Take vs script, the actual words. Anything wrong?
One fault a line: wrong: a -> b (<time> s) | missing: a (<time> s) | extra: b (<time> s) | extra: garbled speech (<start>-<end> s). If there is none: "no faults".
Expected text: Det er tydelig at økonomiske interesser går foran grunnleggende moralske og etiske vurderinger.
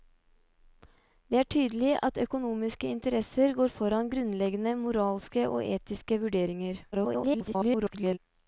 extra: garbled speech (6.9-8.2 s)